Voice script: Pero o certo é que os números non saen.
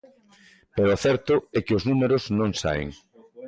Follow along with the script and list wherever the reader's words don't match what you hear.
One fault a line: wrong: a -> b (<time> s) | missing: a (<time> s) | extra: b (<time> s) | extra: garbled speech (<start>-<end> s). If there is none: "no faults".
no faults